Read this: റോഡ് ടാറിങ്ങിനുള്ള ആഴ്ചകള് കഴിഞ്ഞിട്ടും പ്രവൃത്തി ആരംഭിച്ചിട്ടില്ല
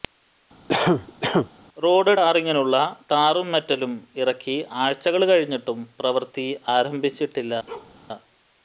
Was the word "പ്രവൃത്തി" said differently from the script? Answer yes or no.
no